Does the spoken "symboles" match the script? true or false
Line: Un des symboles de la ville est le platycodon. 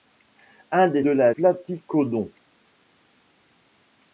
false